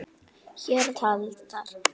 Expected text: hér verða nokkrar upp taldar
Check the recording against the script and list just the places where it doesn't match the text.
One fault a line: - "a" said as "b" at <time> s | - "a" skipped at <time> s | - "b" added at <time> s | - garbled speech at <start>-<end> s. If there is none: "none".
- "verða nokkrar upp" skipped at 0.9 s